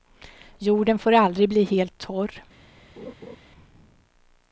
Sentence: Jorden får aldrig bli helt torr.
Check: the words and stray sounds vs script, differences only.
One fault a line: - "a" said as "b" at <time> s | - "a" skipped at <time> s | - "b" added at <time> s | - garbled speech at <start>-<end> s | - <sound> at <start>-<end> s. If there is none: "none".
- laugh at 3.0-3.4 s